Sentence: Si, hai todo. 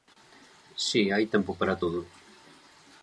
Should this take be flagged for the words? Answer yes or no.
yes